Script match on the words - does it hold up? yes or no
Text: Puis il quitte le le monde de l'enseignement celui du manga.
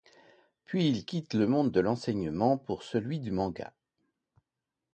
no